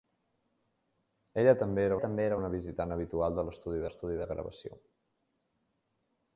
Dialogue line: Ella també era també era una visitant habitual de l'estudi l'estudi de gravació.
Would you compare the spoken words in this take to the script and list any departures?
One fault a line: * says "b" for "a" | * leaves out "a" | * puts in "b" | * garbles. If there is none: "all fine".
all fine